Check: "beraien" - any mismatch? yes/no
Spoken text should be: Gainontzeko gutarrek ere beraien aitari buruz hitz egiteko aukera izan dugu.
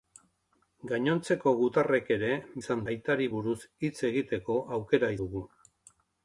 yes